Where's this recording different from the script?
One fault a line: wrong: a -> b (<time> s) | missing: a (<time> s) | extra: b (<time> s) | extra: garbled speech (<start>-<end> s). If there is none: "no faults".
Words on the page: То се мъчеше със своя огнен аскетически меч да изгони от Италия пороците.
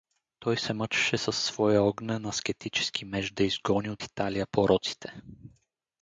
wrong: То -> Той (0.4 s)